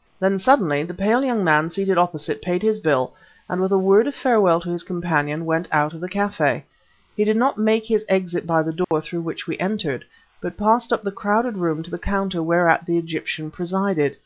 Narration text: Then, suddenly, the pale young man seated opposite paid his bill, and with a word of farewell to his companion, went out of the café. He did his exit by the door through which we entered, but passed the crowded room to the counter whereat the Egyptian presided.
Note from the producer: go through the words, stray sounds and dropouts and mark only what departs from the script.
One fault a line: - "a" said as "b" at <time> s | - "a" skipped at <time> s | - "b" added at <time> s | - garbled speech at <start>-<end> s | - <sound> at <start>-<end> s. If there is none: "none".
- "not make" added at 7.4 s
- dropout at 8.8-8.9 s
- "up" added at 10.9 s